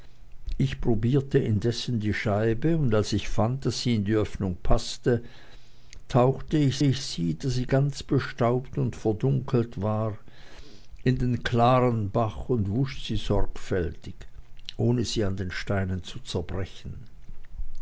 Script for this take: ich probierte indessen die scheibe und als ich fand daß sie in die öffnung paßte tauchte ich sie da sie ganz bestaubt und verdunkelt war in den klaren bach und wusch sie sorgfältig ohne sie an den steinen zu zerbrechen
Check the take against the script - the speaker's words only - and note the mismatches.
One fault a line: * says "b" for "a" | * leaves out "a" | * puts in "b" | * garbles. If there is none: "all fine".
* puts in "ich"